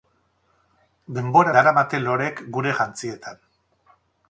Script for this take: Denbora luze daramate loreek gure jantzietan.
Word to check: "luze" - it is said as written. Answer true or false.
false